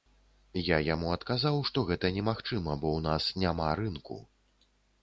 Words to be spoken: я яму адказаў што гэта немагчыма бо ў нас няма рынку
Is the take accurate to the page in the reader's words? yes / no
yes